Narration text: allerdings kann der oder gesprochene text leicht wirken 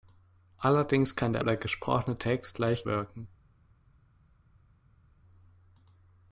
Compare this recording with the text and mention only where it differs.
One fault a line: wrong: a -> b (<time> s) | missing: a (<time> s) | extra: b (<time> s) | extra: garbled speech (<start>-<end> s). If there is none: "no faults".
no faults